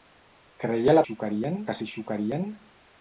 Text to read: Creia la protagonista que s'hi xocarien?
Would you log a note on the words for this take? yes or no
yes